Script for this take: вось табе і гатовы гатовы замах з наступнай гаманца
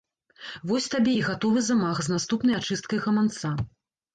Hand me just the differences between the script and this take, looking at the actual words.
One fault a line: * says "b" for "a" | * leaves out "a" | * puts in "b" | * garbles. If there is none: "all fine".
* leaves out "гатовы"
* puts in "ачысткай"